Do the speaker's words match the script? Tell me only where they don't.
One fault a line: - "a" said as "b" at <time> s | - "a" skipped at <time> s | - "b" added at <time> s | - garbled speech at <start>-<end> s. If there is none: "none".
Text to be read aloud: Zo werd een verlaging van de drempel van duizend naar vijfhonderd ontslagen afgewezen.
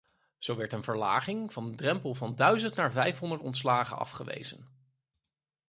none